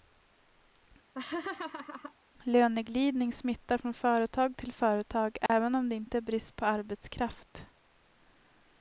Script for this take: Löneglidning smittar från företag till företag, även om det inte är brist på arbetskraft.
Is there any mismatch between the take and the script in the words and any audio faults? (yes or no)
yes